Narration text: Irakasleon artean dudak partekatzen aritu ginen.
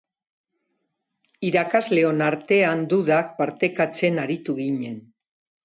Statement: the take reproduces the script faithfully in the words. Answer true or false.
true